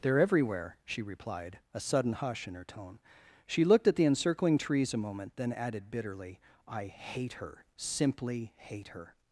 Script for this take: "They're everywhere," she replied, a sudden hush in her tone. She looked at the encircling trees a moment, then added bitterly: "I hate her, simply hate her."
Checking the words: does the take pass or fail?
pass